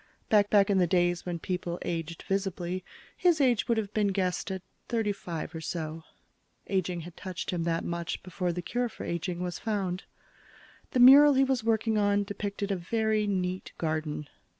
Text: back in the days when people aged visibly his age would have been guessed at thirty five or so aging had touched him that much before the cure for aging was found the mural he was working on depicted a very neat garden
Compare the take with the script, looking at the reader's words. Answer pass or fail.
fail